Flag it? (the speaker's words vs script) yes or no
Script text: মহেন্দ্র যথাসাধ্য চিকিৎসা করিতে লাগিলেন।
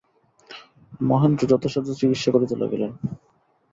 no